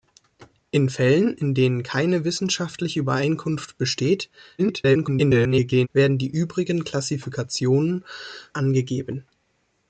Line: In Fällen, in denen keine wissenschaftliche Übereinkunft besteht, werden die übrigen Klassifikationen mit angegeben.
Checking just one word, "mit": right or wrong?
wrong